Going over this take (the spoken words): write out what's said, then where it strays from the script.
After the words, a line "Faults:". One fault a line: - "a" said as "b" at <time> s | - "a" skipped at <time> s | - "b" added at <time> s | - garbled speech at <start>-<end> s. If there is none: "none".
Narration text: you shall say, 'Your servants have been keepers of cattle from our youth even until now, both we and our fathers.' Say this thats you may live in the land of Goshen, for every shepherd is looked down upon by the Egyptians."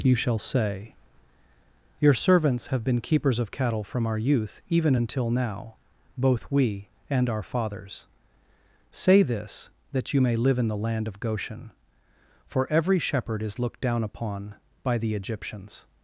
you shall say, 'Your servants have been keepers of cattle from our youth even until now, both we and our fathers.' Say this that you may live in the land of Goshen, for every shepherd is looked down upon by the Egyptians."
Faults:
- "thats" said as "that" at 9.9 s